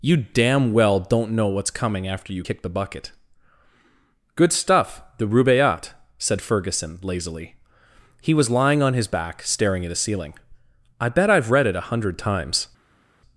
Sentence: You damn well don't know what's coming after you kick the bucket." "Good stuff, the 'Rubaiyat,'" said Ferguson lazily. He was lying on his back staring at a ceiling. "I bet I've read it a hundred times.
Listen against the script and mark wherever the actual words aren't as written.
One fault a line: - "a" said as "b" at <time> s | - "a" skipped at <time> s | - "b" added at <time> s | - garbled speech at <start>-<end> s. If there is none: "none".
none